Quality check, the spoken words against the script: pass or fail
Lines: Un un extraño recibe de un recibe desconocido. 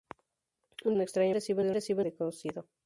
pass